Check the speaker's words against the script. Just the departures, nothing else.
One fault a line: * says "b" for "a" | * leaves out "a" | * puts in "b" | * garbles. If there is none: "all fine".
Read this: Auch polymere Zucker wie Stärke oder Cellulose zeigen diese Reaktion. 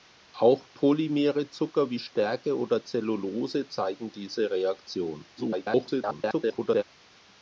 * garbles